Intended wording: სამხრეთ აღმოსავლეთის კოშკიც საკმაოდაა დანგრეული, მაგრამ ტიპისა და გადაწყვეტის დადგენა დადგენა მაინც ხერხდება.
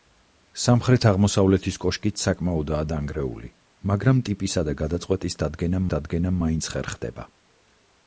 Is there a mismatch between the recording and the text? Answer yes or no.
no